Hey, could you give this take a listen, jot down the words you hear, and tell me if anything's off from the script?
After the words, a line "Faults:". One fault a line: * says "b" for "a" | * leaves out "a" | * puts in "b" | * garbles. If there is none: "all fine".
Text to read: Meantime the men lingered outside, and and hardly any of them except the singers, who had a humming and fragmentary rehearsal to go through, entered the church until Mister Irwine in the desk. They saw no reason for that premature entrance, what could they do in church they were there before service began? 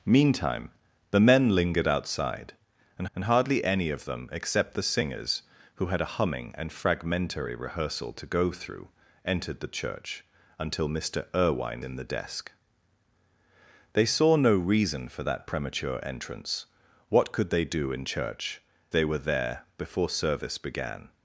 Meantime the men lingered outside, and and hardly any of them except the singers, who had a humming and fragmentary rehearsal to go through, entered the church until Mister Irwine in the desk. They saw no reason for that premature entrance, what could they do in church they were there before service began?
Faults:
all fine